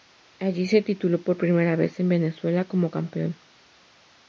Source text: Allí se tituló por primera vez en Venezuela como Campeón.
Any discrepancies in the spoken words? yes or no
no